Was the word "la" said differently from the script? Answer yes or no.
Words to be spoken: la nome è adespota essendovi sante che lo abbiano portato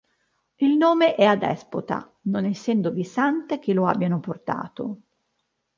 yes